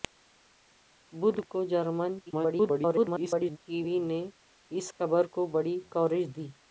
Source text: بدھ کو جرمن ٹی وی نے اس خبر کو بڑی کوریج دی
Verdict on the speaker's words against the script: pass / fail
fail